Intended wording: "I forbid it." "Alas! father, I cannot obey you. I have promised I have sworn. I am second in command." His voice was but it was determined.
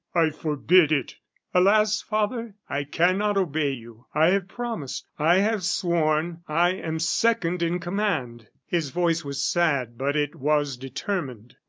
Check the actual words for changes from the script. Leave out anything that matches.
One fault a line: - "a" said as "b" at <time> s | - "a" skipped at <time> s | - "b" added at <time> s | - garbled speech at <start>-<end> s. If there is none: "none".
- "sad" added at 9.4 s